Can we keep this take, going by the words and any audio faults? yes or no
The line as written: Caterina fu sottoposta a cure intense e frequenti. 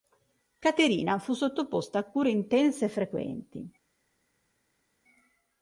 yes